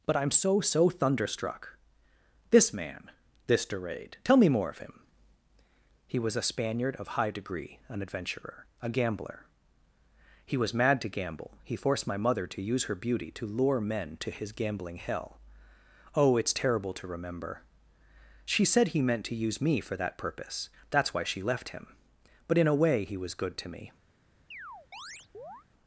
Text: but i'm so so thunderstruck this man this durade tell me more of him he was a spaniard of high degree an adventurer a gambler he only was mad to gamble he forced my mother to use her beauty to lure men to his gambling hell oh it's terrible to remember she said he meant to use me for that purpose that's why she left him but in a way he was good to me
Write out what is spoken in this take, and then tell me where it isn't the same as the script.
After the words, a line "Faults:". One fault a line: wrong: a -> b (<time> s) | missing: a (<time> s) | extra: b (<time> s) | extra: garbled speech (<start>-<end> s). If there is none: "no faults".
but i'm so so thunderstruck this man this durade tell me more of him he was a spaniard of high degree an adventurer a gambler he was mad to gamble he forced my mother to use her beauty to lure men to his gambling hell oh it's terrible to remember she said he meant to use me for that purpose that's why she left him but in a way he was good to me
Faults:
missing: only (10.6 s)